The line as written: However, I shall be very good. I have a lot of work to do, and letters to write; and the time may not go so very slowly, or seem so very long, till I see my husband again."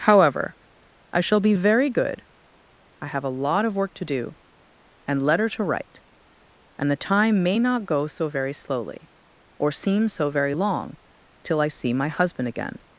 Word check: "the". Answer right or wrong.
right